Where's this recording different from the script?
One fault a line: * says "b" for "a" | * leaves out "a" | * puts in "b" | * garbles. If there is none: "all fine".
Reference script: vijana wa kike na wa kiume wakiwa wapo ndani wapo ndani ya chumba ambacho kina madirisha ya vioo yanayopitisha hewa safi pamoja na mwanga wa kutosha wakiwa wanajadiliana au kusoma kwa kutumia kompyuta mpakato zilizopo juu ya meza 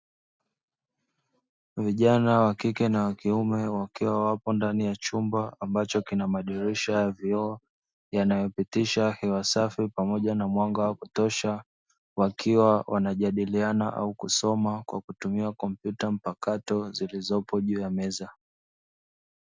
* leaves out "wapo ndani"